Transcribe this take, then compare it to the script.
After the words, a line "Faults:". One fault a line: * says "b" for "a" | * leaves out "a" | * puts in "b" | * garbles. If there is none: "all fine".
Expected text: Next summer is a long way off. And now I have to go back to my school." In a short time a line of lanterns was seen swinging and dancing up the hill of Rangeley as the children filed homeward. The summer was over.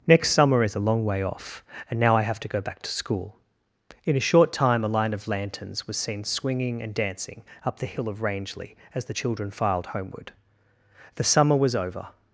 Next summer is a long way off. And now I have to go back to school." In a short time a line of lanterns was seen swinging and dancing up the hill of Rangeley as the children filed homeward. The summer was over.
Faults:
* leaves out "my"